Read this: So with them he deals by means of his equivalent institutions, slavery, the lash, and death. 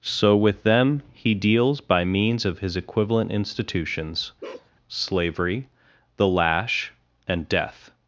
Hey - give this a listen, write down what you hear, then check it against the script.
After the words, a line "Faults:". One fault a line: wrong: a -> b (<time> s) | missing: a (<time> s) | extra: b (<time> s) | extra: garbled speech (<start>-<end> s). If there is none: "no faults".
So with them he deals by means of his equivalent institutions, slavery, the lash, and death.
Faults:
no faults